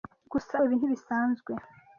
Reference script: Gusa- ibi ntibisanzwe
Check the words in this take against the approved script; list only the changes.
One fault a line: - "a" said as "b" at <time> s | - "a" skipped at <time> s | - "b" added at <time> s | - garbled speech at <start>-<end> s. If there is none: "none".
none